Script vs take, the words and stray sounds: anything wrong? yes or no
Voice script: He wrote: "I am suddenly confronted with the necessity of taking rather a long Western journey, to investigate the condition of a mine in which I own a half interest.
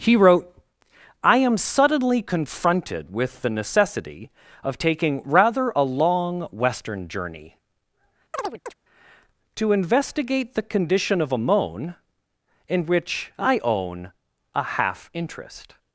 yes